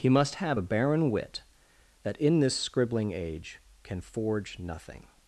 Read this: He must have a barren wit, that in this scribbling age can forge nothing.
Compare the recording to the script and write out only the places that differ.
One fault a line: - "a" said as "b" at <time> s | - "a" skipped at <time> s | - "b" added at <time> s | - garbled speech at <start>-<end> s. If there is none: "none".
none